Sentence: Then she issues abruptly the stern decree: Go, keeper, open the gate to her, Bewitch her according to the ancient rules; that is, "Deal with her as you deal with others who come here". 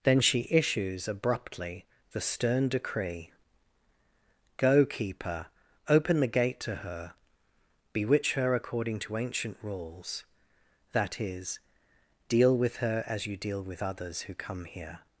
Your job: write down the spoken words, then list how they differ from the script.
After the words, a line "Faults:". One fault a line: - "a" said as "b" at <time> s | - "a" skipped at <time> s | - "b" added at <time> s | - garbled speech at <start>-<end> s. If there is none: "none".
Then she issues abruptly the stern decree: Go, keeper, open the gate to her, Bewitch her according to ancient rules; that is, "Deal with her as you deal with others who come here".
Faults:
- "the" skipped at 9.2 s